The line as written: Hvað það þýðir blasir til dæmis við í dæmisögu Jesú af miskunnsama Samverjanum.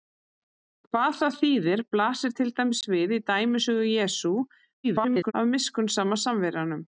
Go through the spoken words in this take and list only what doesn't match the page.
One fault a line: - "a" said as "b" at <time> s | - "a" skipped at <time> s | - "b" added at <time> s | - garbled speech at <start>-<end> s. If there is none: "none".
- garbled speech at 4.8-5.3 s